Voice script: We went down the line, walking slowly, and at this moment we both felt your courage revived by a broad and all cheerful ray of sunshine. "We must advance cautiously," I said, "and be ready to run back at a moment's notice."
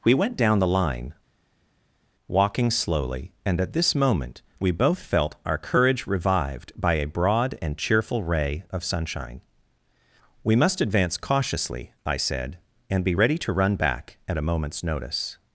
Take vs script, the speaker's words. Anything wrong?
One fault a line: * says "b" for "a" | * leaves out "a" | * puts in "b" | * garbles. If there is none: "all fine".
* says "our" for "your"
* leaves out "all"